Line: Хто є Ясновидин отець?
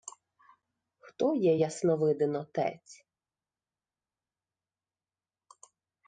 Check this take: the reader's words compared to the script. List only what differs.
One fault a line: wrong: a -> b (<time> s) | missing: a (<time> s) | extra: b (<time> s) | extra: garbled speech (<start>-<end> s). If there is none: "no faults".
no faults